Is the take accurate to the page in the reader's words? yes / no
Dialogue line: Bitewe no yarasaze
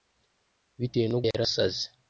yes